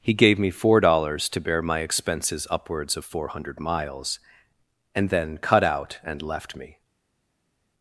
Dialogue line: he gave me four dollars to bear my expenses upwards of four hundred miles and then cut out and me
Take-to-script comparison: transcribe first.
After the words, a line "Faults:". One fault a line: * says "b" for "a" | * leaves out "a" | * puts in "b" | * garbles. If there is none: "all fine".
he gave me four dollars to bear my expenses upwards of four hundred miles and then cut out and left me
Faults:
* puts in "left"